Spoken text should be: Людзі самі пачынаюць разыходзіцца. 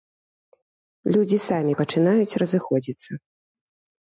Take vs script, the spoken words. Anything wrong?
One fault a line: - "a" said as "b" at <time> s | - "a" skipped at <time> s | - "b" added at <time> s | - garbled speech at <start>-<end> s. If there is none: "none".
none